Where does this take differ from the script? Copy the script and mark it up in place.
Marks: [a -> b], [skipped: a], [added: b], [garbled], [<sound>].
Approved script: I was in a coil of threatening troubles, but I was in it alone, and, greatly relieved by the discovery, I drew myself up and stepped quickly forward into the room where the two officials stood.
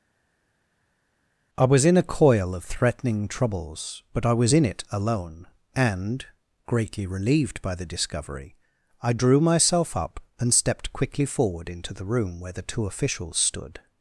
I was in a coil of threatening troubles, but I was in it alone, and, greatly relieved by the discovery, I drew myself up and stepped quickly forward into the room where the two officials stood.